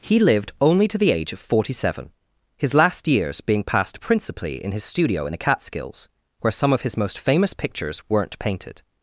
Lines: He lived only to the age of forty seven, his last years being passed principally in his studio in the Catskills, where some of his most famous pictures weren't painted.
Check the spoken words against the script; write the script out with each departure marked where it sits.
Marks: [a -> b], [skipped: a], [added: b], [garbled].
He lived only to the age of forty seven, his last years being passed principally in his studio in the Catskills, where some of his most famous pictures weren't painted.